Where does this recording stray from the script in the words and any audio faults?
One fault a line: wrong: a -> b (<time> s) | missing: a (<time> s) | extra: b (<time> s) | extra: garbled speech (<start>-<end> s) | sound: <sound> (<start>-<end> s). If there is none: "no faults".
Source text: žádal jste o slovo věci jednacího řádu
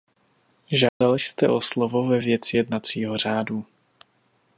sound: dropout (0.9-1.0 s)
extra: ve (2.1 s)